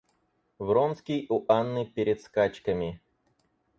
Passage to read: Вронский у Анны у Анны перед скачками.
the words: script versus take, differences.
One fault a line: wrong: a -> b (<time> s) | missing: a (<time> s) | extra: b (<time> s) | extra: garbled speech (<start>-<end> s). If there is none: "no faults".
missing: у Анны (1.9 s)